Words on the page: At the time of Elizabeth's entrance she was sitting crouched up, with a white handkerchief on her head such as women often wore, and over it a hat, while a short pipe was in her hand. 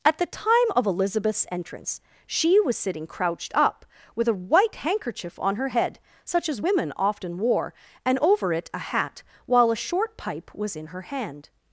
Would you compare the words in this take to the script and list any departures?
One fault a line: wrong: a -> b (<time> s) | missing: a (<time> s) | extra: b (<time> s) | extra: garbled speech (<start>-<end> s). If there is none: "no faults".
no faults